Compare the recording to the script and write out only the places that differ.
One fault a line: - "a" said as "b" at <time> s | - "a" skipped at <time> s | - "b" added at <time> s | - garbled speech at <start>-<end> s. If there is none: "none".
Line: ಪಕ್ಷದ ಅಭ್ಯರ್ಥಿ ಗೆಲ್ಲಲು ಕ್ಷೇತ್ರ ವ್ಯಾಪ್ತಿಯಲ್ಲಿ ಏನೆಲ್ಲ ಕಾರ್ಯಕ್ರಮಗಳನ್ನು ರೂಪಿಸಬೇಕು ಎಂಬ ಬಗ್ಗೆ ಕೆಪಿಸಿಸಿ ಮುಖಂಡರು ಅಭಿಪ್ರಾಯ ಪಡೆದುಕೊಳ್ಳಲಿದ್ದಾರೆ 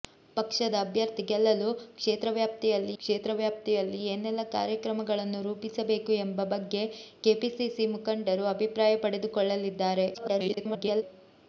- "ಕ್ಷೇತ್ರ ವ್ಯಾಪ್ತಿಯಲ್ಲಿ" added at 3.0 s
- garbled speech at 10.1-11.0 s